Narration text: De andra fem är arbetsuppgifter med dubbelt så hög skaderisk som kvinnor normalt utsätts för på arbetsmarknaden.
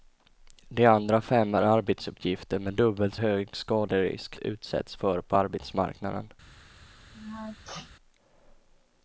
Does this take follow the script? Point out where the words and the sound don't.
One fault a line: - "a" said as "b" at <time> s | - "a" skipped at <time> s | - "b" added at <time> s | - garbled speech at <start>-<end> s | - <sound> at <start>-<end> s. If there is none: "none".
- "så" skipped at 3.1 s
- "som kvinnor normalt" skipped at 4.4 s
- sneeze at 7.1-7.9 s